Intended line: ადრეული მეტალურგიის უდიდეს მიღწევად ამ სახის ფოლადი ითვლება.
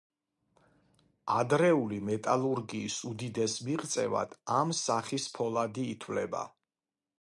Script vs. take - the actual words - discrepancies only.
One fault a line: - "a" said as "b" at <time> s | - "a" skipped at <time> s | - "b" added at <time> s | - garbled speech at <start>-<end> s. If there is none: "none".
none